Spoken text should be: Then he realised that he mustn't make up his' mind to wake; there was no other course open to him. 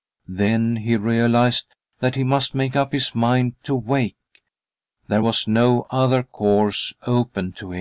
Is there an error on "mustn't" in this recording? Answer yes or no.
yes